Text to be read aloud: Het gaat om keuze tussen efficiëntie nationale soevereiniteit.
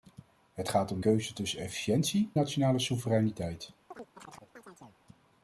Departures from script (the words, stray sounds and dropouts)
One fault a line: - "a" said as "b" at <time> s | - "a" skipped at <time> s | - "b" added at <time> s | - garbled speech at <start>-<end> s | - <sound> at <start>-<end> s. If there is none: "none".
- chirp at 3.9-5.0 s